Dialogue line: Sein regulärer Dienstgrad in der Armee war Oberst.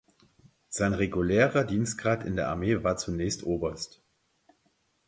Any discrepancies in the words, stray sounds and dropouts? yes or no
yes